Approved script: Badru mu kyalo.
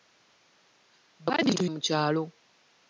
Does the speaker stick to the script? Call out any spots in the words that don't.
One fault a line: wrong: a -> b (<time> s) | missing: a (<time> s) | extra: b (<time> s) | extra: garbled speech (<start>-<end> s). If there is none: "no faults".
no faults